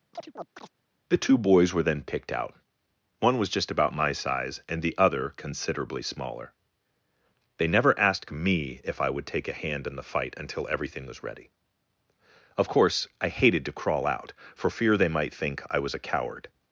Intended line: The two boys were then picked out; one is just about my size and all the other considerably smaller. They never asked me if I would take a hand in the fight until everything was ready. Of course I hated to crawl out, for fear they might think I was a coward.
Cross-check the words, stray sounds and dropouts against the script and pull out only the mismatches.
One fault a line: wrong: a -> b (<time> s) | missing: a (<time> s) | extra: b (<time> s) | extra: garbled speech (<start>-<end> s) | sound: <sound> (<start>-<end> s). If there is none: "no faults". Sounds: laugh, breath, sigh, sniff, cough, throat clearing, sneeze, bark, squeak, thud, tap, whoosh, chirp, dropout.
sound: chirp (0.1-0.7 s)
wrong: is -> was (3.4 s)
missing: all (4.8 s)